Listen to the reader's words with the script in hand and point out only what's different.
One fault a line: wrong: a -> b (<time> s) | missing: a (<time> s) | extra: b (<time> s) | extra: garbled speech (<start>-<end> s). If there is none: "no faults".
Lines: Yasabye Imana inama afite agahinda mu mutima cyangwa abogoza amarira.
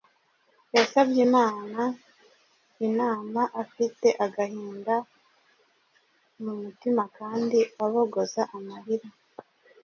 wrong: cyangwa -> kandi (7.2 s)